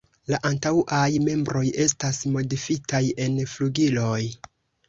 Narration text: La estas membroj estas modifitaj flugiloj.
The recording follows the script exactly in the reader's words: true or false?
false